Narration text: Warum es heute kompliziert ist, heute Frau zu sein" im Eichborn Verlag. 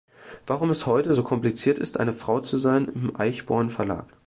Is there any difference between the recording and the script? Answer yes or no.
yes